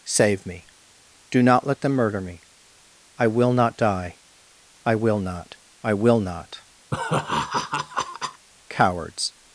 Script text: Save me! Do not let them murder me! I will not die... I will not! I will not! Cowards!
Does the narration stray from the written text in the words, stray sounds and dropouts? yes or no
yes